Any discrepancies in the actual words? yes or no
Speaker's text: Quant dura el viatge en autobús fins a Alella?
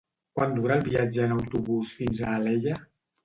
no